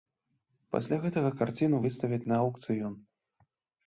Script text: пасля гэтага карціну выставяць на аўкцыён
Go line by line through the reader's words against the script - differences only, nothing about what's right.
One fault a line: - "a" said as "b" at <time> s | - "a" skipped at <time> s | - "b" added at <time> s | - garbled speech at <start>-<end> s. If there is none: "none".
none